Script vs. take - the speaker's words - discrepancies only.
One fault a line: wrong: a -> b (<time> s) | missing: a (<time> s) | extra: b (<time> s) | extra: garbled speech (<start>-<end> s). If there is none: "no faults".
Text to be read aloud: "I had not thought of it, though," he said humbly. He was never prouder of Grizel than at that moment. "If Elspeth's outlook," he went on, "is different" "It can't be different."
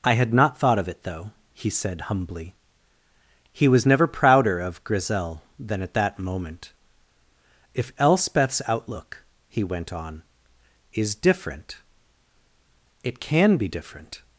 wrong: can't -> can (13.2 s)